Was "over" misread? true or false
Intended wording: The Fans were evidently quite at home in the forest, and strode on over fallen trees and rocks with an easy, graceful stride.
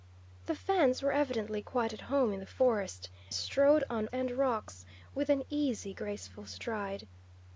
true